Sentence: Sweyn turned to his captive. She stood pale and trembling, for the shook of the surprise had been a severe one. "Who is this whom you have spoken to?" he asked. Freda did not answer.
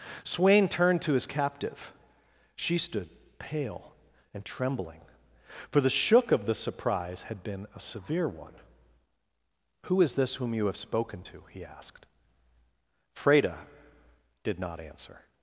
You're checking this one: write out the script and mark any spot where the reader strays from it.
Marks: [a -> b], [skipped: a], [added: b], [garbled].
Sweyn turned to his captive. She stood pale and trembling, for the shook of the surprise had been a severe one. "Who is this whom you have spoken to?" he asked. Freda did not answer.